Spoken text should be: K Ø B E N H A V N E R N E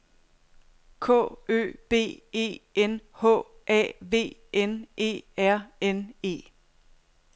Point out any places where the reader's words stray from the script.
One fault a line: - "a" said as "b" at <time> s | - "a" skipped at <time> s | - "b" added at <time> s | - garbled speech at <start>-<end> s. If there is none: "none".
none